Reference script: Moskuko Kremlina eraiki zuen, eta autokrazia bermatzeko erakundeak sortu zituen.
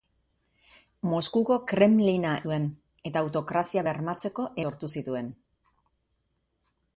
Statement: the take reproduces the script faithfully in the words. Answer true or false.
false